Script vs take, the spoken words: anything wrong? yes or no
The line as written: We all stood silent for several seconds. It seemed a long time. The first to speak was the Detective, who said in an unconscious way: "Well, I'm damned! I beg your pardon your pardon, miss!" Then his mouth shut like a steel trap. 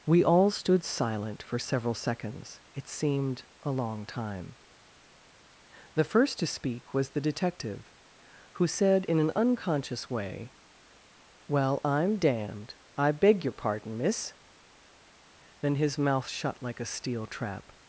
yes